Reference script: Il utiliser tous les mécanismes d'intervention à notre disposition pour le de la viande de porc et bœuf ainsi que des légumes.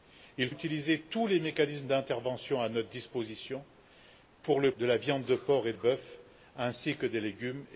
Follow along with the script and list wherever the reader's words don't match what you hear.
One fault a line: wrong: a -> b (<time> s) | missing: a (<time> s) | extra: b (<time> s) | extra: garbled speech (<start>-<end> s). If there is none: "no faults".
no faults